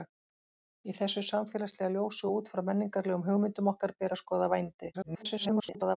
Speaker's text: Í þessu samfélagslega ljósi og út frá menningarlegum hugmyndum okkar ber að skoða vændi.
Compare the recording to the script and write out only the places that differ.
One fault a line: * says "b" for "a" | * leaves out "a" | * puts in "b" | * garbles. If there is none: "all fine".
* garbles